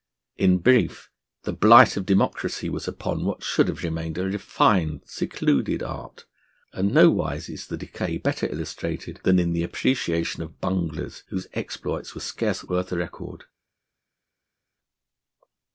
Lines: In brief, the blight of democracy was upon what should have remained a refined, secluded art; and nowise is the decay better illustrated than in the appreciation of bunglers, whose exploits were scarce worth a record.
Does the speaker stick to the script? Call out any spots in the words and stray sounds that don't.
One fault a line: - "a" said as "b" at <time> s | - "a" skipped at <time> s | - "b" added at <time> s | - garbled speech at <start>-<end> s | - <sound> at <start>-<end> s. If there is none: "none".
none